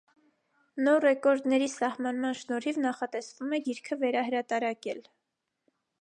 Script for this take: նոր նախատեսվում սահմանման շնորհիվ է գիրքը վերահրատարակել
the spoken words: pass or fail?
fail